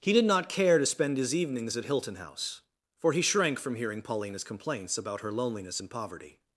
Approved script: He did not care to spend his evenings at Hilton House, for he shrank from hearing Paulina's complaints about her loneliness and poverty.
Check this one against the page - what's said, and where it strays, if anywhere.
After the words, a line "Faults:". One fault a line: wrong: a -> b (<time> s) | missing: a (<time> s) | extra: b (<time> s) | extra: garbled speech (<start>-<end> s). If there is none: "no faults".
He did not care to spend his evenings at Hilton House, for he shrank from hearing Paulina's complaints about her loneliness and poverty.
Faults:
no faults